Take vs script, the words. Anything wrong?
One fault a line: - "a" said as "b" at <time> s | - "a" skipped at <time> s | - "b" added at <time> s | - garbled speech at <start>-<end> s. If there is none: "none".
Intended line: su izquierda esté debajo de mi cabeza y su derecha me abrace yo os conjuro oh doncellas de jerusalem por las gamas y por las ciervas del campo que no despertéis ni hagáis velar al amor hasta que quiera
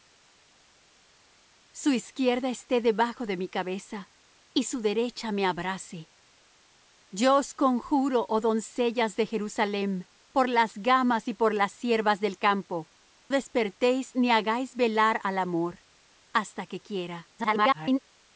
- "que no" skipped at 12.9 s
- garbled speech at 17.4-18.0 s